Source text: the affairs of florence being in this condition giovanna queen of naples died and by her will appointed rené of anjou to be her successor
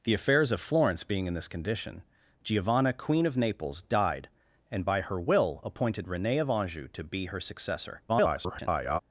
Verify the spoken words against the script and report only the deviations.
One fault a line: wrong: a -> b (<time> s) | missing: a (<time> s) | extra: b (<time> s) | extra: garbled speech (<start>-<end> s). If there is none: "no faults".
extra: garbled speech (8.1-9.0 s)